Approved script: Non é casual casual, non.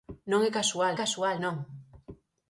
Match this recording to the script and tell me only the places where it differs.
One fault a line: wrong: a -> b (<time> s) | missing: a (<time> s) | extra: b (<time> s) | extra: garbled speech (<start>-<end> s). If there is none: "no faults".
no faults